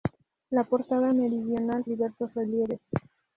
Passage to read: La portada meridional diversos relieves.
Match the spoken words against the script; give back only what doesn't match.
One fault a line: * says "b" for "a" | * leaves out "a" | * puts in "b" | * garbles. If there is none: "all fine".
all fine